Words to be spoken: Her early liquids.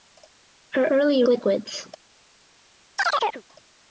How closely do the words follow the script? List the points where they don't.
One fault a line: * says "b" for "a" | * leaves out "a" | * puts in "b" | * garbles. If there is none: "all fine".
all fine